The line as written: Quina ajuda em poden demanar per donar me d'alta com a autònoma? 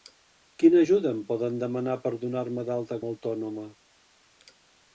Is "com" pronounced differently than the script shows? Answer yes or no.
yes